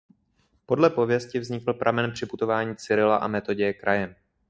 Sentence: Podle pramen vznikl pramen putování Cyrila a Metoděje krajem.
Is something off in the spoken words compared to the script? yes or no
yes